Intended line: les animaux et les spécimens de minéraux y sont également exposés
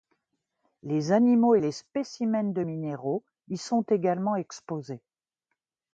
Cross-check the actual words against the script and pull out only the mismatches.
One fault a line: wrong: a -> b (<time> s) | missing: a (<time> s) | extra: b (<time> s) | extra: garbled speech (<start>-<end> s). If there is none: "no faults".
no faults